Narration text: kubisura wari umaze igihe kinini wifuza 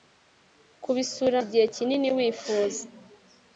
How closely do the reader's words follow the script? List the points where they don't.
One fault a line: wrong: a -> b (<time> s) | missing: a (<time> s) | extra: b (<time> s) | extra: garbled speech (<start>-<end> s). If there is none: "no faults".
missing: wari umaze (1.4 s)